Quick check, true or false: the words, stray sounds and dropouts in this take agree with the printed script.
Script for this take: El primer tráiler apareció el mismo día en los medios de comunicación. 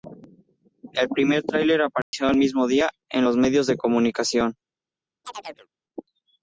false